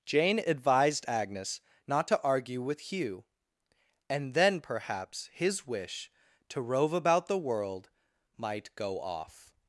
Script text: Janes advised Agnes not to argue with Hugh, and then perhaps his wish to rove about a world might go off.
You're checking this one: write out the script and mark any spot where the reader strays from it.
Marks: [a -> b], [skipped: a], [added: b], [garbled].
[Janes -> Jane] advised Agnes not to argue with Hugh, and then perhaps his wish to rove about [a -> the] world might go off.